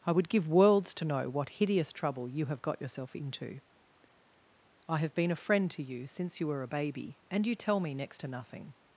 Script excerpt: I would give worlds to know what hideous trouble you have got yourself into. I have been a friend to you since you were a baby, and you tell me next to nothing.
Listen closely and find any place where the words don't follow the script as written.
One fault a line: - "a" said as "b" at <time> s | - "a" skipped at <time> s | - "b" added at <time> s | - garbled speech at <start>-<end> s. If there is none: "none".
none